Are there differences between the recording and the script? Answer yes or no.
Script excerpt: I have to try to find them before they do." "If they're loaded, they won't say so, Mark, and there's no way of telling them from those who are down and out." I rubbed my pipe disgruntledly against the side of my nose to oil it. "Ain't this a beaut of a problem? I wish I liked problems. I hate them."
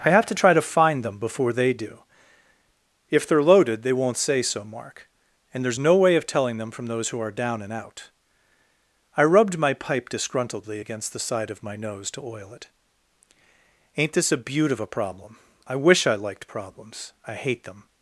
no